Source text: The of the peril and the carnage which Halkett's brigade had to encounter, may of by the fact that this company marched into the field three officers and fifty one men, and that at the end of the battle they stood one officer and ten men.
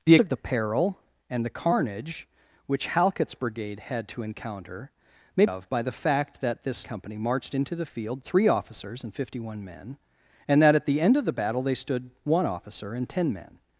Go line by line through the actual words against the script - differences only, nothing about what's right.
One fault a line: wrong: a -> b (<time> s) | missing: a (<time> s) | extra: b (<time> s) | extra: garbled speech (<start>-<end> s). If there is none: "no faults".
no faults